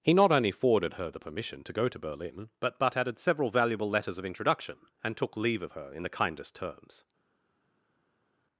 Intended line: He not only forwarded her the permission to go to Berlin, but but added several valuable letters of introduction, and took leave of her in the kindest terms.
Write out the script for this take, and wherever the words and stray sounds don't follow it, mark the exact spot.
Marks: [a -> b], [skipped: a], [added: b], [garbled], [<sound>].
He not only forwarded her the permission to go to Berlin, but but added several valuable letters of introduction, and took leave of her in the kindest terms.